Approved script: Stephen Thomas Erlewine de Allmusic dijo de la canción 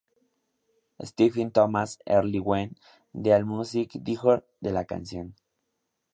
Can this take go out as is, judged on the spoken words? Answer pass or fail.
pass